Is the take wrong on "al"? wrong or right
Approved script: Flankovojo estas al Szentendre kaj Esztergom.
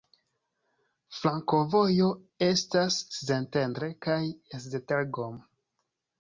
wrong